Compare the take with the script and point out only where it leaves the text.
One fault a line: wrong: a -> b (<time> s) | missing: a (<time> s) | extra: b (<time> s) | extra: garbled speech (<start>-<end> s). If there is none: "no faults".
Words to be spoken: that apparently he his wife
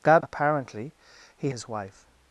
no faults